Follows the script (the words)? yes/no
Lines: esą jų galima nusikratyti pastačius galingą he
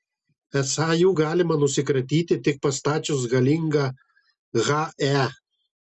no